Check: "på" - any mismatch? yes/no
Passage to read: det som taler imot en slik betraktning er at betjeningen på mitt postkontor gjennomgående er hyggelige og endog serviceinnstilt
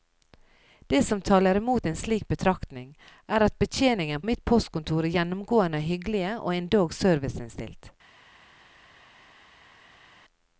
yes